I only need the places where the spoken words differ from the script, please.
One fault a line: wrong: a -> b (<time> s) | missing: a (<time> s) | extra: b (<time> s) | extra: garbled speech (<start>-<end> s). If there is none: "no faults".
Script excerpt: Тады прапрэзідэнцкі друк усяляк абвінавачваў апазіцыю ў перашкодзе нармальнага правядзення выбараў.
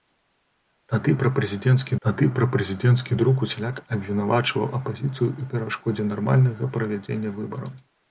extra: тады прапрэзідэнцкі (2.1 s)